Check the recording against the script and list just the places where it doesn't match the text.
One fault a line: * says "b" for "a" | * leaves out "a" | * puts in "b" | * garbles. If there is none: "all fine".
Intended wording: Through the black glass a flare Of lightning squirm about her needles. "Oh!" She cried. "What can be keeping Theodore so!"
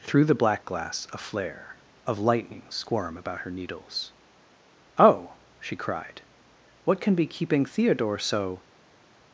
all fine